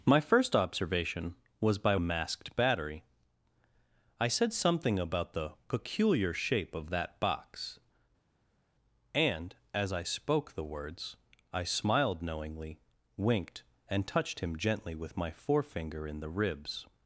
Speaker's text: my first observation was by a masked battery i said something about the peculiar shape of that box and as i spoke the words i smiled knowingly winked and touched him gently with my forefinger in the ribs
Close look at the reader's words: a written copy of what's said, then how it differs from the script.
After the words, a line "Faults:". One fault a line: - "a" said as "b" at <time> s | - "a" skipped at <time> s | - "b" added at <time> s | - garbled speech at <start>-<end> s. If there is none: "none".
my first observation was by a masked battery i said something about the peculiar shape of that box and as i spoke the words i smiled knowingly winked and touched him gently with my forefinger in the ribs
Faults:
none